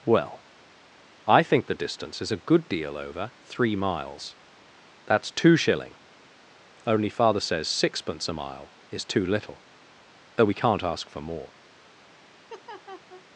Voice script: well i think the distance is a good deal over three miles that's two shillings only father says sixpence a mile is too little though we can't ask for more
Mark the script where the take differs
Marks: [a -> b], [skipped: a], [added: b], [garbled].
well i think the distance is a good deal over three miles that's two [shillings -> shilling] only father says sixpence a mile is too little though we can't ask for more